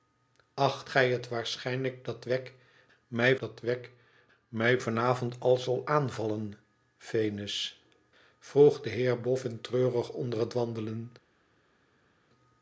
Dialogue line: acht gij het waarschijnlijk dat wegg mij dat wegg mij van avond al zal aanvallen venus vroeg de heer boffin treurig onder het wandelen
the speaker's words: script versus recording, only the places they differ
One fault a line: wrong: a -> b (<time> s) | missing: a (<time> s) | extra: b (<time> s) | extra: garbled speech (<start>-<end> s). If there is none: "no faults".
no faults